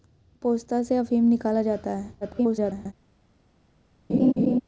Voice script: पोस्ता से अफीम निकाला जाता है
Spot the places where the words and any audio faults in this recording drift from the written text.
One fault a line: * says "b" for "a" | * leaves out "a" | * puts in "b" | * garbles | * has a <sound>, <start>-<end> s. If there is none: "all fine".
* garbles
* has a laugh, 4.1-4.6 s